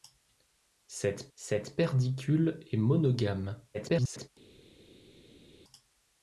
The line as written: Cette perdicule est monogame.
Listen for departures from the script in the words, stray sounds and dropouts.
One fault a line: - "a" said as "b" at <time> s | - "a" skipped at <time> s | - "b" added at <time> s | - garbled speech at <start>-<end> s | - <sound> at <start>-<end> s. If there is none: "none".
- "cette" added at 1.4 s
- garbled speech at 3.7-4.3 s